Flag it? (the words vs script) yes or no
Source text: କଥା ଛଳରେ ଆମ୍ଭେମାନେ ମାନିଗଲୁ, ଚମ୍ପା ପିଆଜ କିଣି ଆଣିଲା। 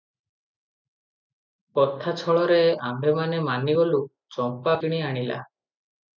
yes